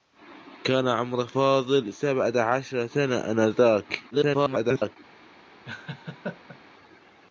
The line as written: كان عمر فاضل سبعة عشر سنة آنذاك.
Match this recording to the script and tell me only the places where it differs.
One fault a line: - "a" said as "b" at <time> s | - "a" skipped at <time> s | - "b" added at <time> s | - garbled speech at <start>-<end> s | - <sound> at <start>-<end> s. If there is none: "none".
- garbled speech at 4.1-5.0 s
- laugh at 5.6-6.6 s